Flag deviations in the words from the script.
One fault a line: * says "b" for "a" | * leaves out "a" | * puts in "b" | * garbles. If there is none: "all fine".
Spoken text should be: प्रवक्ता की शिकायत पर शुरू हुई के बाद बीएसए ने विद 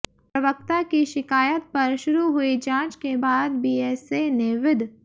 * puts in "जांच"